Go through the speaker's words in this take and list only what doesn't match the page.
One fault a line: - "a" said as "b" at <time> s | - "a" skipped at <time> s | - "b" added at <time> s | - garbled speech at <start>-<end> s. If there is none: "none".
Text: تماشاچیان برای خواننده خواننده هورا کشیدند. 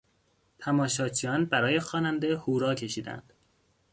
- "خواننده" skipped at 2.4 s